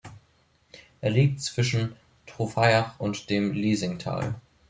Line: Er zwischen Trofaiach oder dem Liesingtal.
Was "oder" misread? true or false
true